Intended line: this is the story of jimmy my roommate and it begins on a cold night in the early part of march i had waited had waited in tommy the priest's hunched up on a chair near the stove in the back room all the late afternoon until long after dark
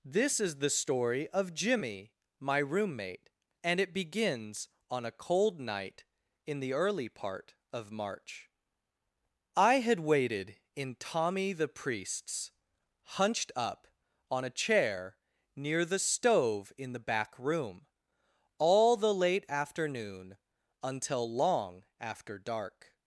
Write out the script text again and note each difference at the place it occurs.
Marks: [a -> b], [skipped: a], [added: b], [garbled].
this is the story of jimmy my roommate and it begins on a cold night in the early part of march i had waited [skipped: had waited] in tommy the priest's hunched up on a chair near the stove in the back room all the late afternoon until long after dark